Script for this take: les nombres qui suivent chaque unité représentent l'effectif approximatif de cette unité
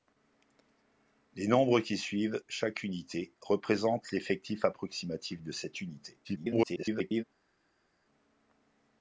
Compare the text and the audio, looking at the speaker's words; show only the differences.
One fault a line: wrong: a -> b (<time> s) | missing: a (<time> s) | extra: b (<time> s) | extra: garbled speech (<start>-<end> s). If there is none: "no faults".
extra: garbled speech (6.2-7.2 s)